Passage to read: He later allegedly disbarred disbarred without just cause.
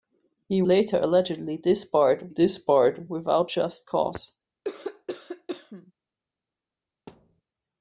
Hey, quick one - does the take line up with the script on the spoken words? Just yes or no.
yes